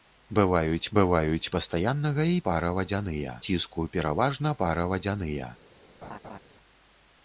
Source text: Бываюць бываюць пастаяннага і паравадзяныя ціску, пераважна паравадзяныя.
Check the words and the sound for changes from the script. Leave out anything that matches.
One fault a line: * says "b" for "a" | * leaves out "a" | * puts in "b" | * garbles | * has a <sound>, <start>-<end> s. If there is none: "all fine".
* has a laugh, 6.0-6.4 s